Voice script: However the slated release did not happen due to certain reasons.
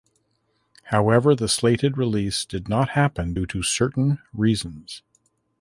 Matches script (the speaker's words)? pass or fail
pass